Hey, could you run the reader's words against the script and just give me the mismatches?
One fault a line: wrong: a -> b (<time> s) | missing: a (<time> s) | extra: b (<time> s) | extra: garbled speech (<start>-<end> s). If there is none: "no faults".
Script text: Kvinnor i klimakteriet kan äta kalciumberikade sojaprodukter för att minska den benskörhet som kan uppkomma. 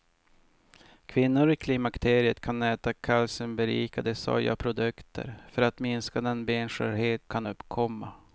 missing: som (7.3 s)